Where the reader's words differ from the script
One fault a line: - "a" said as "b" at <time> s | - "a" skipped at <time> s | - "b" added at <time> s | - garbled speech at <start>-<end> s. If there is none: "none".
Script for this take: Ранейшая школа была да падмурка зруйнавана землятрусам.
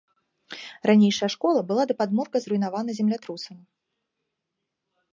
none